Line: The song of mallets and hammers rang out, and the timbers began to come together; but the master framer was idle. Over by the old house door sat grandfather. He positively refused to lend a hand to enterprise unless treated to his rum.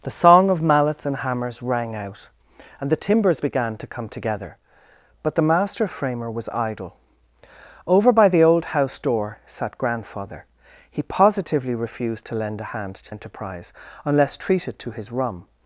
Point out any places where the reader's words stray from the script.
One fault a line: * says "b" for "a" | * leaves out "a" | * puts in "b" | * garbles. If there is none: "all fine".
all fine